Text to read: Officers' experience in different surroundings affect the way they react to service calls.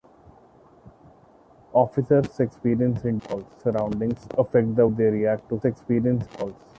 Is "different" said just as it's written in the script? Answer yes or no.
no